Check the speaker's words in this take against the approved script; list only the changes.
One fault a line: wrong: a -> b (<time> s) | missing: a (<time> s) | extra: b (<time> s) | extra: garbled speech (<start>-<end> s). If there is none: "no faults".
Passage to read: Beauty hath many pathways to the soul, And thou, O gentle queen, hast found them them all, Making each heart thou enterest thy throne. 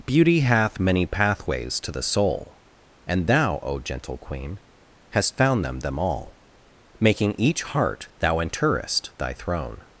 no faults